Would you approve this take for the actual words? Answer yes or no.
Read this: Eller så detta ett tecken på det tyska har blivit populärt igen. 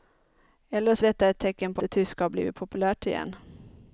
yes